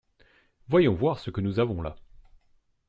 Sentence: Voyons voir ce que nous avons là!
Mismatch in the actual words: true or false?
false